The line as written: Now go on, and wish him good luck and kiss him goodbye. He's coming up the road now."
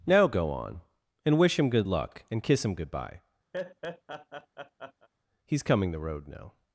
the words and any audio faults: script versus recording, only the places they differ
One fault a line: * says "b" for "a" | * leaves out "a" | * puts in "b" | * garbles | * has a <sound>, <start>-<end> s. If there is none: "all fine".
* has a laugh, 3.5-5.1 s
* leaves out "up"